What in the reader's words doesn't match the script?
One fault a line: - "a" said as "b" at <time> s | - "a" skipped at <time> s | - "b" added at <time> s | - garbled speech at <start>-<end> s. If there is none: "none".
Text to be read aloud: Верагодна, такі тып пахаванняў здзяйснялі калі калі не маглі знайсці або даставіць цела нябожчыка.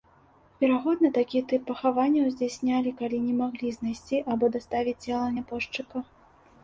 - "калі" skipped at 3.2 s